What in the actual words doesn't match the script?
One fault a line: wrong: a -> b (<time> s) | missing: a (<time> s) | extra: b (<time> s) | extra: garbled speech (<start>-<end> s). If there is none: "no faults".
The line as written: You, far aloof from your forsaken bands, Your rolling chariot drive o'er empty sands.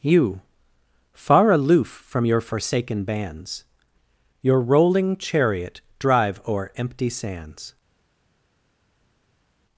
no faults